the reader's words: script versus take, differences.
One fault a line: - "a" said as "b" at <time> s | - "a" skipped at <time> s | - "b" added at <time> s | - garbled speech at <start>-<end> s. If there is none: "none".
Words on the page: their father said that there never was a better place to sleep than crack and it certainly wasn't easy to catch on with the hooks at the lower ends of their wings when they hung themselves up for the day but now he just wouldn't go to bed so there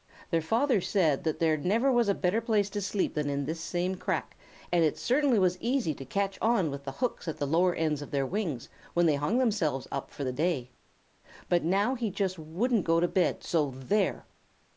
- "in this same" added at 3.3 s
- "wasn't" said as "was" at 5.4 s